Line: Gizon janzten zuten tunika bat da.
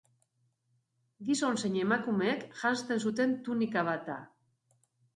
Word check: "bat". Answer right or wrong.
right